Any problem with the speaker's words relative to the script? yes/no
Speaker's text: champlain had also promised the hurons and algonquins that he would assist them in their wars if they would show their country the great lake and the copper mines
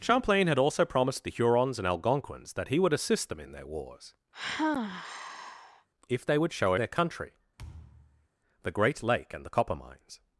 no